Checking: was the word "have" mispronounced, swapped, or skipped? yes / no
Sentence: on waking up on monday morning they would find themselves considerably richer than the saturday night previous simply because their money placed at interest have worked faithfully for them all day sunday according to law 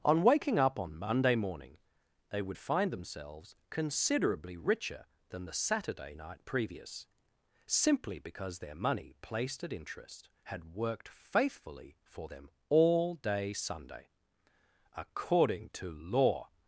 yes